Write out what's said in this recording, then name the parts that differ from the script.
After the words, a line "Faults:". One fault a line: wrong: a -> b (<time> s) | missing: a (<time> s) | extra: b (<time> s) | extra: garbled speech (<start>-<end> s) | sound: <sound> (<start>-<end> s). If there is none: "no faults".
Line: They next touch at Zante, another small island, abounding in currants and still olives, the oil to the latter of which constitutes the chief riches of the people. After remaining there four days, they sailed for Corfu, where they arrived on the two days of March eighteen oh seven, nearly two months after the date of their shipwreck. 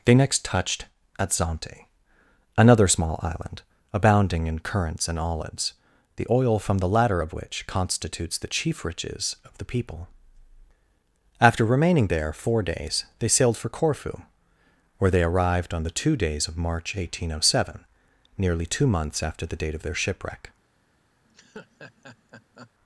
They next touched at Zante, another small island, abounding in currants and olives, the oil from the latter of which constitutes the chief riches of the people. After remaining there four days, they sailed for Corfu, where they arrived on the two days of March eighteen oh seven, nearly two months after the date of their shipwreck.
Faults:
wrong: touch -> touched (0.4 s)
missing: still (5.2 s)
wrong: to -> from (6.6 s)
sound: laugh (21.2-22.7 s)